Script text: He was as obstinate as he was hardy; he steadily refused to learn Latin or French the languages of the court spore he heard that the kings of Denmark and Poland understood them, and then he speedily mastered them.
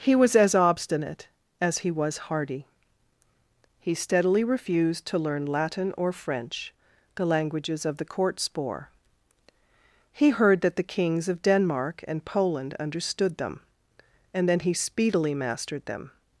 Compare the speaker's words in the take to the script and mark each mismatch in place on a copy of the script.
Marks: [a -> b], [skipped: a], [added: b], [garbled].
He was as obstinate as he was hardy; he steadily refused to learn Latin or French the languages of the court spore he heard that the kings of Denmark and Poland understood them, and then he speedily mastered them.